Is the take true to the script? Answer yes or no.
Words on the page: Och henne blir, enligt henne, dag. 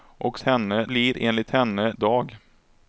yes